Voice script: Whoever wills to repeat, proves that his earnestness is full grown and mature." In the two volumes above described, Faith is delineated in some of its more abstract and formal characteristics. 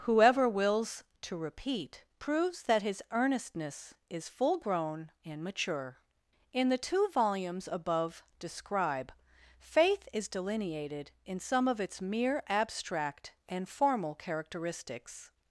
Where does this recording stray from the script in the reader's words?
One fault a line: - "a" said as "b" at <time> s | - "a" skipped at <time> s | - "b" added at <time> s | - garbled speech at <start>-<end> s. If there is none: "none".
- "described" said as "describe" at 8.4 s
- "more" said as "mere" at 12.0 s